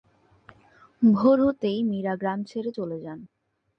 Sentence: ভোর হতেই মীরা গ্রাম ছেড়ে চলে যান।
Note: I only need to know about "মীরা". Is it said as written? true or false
true